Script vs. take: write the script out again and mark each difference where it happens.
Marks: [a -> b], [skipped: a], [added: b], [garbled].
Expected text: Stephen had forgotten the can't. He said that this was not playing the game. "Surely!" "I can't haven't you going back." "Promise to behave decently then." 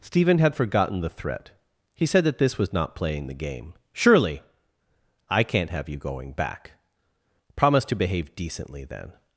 Stephen had forgotten the [can't. -> threat] He said that this was not playing the game. "Surely!" "I can't [haven't -> have] you going back." "Promise to behave decently then."